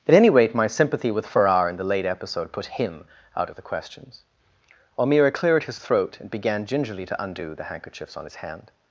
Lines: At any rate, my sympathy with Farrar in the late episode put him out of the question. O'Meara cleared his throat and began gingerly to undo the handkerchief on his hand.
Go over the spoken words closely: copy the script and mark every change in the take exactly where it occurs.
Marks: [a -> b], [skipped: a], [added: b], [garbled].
At any rate, my sympathy with Farrar in the late episode put him out of the [question. -> questions] O'Meara cleared his throat and began gingerly to undo the [handkerchief -> handkerchiefs] on his hand.